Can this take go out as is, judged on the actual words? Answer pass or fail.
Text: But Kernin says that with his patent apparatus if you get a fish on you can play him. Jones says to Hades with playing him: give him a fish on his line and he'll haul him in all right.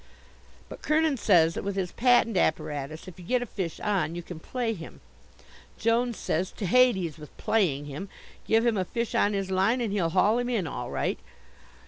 pass